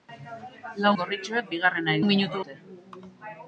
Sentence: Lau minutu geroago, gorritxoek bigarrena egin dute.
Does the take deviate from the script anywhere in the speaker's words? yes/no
yes